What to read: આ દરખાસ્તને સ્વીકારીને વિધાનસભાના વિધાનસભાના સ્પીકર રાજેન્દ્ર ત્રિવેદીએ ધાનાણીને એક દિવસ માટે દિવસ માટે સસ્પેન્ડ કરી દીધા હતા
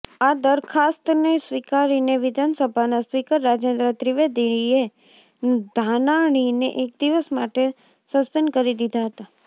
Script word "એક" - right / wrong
right